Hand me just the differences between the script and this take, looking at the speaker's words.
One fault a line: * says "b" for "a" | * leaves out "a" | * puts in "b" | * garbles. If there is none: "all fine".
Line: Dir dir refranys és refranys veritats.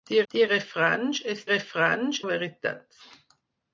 all fine